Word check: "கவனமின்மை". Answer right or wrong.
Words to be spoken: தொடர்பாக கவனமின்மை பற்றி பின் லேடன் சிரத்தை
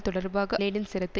wrong